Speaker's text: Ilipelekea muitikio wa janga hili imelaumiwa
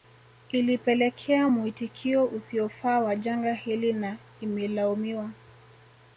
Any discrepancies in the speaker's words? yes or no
yes